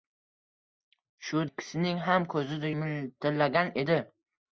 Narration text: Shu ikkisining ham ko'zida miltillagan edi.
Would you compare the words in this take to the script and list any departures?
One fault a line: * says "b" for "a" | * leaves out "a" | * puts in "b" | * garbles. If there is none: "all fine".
all fine